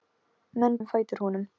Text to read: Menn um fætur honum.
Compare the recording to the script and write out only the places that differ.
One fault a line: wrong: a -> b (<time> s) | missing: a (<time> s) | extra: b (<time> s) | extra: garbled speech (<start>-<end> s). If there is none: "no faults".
no faults